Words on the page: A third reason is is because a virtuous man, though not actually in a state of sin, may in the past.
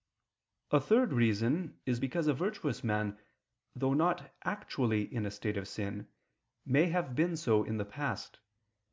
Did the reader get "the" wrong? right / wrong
right